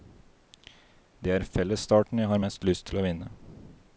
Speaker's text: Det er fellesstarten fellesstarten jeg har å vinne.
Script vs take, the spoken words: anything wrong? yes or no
yes